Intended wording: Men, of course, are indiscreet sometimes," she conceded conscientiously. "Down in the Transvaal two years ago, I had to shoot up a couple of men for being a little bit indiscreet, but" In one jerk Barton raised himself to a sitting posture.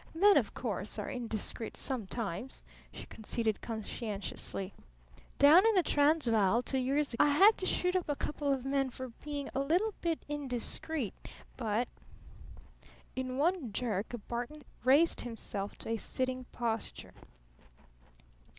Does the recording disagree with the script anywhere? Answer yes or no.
yes